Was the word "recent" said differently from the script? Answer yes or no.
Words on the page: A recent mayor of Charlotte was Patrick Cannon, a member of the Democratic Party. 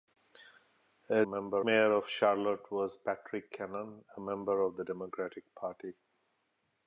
yes